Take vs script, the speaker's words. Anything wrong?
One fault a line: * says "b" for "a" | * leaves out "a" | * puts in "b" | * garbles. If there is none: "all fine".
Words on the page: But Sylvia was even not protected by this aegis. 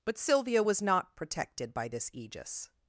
* leaves out "even"